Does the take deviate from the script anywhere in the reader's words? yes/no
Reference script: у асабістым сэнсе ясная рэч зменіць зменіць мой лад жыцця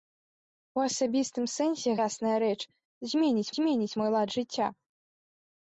no